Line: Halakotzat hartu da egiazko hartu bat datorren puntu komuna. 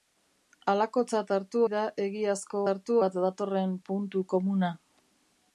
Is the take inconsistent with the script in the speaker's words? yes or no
no